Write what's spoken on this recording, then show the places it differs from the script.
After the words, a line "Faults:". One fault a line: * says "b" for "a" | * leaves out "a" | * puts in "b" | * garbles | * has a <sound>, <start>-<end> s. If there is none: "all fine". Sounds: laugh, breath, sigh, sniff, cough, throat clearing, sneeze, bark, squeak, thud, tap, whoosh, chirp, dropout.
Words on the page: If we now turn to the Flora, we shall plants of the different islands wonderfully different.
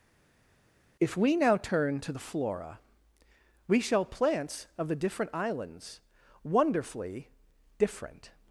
If we now turn to the Flora, we shall plants of the different islands wonderfully different.
Faults:
all fine